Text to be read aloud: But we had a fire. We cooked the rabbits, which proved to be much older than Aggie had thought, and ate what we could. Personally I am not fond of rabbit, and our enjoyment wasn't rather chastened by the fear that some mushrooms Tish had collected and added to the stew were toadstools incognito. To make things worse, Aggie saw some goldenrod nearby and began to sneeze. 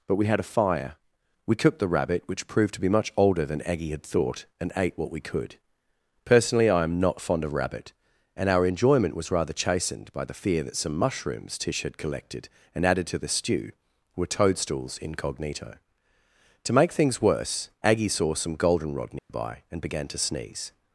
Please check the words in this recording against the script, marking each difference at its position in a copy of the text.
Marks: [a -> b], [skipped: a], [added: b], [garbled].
But we had a fire. We cooked the [rabbits, -> rabbit] which proved to be much older than Aggie had thought, and ate what we could. Personally I am not fond of rabbit, and our enjoyment [wasn't -> was] rather chastened by the fear that some mushrooms Tish had collected and added to the stew were toadstools incognito. To make things worse, Aggie saw some goldenrod nearby and began to sneeze.